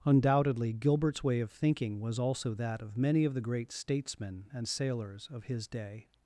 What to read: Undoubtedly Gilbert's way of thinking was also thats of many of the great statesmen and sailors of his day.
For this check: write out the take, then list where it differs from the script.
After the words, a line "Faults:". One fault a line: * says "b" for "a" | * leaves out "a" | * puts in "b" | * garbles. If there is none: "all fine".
Undoubtedly Gilbert's way of thinking was also that of many of the great statesmen and sailors of his day.
Faults:
* says "that" for "thats"